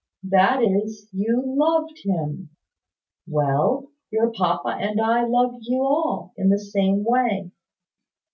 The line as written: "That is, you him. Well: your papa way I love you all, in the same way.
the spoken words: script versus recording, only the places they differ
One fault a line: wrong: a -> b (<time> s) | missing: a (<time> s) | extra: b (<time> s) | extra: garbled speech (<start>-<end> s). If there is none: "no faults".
extra: loved (1.4 s)
wrong: way -> and (4.8 s)